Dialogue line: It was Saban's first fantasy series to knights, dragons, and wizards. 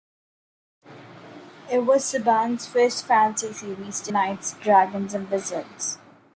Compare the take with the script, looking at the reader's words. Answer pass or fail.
pass